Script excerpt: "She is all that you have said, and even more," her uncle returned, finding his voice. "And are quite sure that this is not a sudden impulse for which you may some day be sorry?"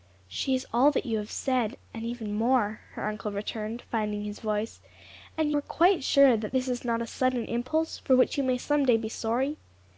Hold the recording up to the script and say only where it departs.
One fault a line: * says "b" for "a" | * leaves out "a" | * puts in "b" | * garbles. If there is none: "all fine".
all fine